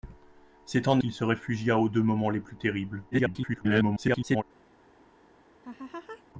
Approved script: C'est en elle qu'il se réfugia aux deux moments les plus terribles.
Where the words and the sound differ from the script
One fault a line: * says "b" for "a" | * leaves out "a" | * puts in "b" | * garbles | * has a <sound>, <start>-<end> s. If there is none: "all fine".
* leaves out "elle"
* garbles
* has a laugh, 5.6-6.2 s